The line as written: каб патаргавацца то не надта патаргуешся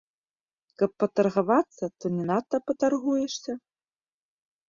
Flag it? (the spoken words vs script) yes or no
no